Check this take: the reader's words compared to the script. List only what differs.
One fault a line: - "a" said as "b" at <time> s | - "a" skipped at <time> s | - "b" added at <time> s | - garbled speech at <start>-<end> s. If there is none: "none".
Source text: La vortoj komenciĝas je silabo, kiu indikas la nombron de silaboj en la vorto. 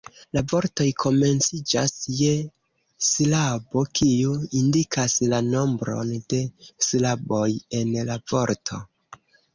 none